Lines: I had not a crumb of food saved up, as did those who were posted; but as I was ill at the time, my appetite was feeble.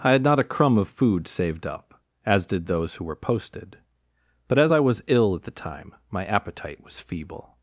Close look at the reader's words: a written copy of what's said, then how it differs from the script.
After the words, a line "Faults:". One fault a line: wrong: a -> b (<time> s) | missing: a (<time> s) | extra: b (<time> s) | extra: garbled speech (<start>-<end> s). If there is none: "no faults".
I had not a crumb of food saved up, as did those who were posted; but as I was ill at the time, my appetite was feeble.
Faults:
no faults